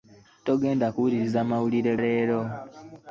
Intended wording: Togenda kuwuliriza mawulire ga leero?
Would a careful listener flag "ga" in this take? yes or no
yes